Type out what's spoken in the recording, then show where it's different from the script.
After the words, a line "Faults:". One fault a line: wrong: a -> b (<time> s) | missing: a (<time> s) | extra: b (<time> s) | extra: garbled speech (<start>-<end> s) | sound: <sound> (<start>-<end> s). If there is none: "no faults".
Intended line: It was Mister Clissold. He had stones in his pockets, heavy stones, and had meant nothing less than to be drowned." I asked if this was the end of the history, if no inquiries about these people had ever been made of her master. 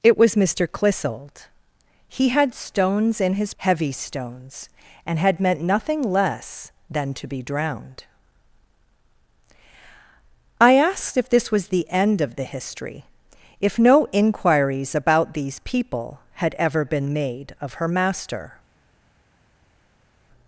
It was Mister Clissold. He had stones in his heavy stones, and had meant nothing less than to be drowned." I asked if this was the end of the history, if no inquiries about these people had ever been made of her master.
Faults:
missing: pockets (3.5 s)